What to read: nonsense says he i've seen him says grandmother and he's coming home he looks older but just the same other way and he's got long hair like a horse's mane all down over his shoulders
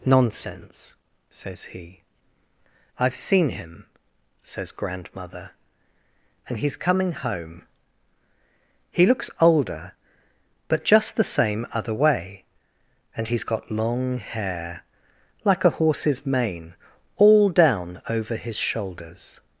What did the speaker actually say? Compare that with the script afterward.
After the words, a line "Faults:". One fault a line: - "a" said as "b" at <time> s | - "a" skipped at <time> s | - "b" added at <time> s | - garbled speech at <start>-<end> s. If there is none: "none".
nonsense says he i've seen him says grandmother and he's coming home he looks older but just the same other way and he's got long hair like a horse's mane all down over his shoulders
Faults:
none